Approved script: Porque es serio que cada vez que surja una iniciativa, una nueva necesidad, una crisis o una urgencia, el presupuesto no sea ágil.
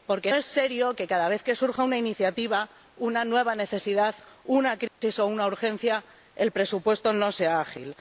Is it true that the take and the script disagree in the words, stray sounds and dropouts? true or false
true